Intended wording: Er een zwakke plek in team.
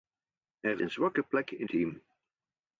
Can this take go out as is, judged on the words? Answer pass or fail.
pass